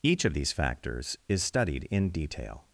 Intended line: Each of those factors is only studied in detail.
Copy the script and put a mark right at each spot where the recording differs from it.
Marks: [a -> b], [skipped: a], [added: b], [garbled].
Each of [those -> these] factors is [skipped: only] studied in detail.